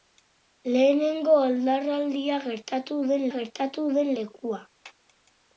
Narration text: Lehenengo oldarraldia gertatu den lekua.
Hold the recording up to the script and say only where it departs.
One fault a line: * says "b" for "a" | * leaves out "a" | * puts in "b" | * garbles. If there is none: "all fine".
* puts in "gertatu den"